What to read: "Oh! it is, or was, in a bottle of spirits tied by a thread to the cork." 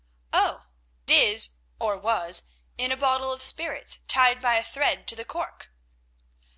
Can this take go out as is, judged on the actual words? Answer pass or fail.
fail